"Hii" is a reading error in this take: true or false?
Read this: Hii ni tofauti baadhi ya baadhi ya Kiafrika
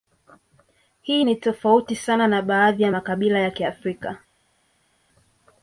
false